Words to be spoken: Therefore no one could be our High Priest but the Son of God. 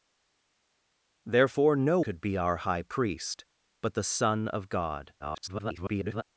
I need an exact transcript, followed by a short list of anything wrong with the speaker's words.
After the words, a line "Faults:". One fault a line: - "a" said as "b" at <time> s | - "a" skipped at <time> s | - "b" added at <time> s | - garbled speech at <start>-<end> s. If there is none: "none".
Therefore no could be our High Priest but the Son of God. [garbled]
Faults:
- "one" skipped at 2.0 s
- garbled speech at 5.2-6.2 s